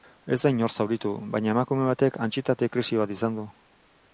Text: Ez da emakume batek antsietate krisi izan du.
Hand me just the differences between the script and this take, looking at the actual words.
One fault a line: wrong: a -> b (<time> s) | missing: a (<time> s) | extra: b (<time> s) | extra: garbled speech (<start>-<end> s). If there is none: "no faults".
extra: inor zauritu baina (0.5 s)
extra: bat (3.0 s)